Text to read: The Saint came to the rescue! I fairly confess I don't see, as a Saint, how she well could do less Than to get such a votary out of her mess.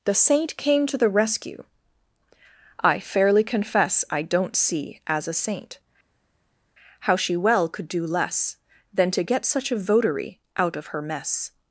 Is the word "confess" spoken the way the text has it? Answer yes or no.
yes